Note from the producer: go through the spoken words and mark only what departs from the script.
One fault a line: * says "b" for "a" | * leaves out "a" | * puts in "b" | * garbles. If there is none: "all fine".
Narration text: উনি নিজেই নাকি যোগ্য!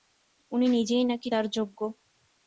* puts in "তার"